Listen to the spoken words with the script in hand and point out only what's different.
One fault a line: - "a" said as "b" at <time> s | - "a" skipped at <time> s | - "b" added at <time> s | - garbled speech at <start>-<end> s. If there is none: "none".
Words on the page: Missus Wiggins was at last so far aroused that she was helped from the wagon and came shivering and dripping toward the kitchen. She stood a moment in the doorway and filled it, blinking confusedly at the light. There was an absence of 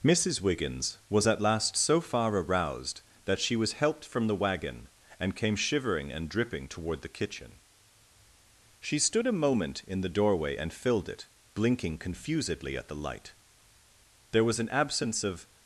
none